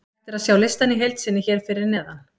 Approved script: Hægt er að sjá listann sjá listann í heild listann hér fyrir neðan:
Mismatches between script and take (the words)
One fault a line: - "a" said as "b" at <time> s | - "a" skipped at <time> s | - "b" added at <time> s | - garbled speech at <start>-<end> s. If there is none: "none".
- "sjá listann" skipped at 0.9 s
- "listann" said as "sinni" at 1.2 s